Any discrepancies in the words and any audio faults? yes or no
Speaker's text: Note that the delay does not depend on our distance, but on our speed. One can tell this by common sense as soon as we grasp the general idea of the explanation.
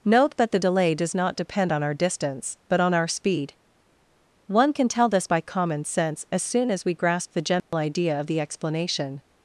yes